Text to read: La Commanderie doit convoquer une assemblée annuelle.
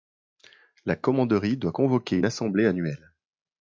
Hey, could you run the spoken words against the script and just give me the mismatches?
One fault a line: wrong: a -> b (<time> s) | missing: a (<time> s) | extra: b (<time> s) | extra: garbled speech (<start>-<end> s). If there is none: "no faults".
no faults